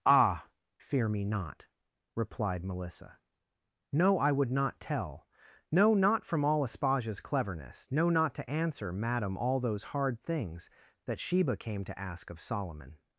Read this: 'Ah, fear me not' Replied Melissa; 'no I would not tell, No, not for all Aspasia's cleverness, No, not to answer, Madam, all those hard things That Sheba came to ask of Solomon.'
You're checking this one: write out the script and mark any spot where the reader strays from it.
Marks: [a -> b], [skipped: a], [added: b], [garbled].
'Ah, fear me not' Replied Melissa; 'no I would not tell, No, not [for -> from] all Aspasia's cleverness, No, not to answer, Madam, all those hard things That Sheba came to ask of Solomon.'